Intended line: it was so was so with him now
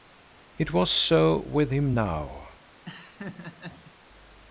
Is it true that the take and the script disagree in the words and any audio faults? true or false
true